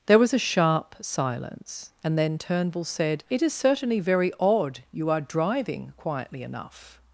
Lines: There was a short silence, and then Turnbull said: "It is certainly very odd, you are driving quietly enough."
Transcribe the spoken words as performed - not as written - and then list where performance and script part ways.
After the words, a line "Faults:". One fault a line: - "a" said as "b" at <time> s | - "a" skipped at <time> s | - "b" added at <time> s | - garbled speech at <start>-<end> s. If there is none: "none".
There was a sharp silence, and then Turnbull said: "It is certainly very odd, you are driving quietly enough."
Faults:
- "short" said as "sharp" at 0.4 s